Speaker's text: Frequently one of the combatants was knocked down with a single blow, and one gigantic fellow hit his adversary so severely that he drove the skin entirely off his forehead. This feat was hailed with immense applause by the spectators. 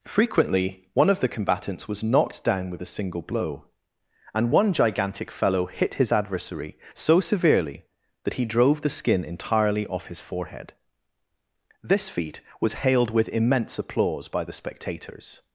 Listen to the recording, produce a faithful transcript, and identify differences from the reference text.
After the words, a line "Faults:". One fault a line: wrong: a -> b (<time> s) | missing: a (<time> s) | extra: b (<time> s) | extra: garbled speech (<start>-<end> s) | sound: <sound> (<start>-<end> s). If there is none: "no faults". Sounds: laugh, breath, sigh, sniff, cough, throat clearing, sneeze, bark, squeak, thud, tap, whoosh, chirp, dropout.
Frequently one of the combatants was knocked down with a single blow, and one gigantic fellow hit his adversary so severely that he drove the skin entirely off his forehead. This feat was hailed with immense applause by the spectators.
Faults:
no faults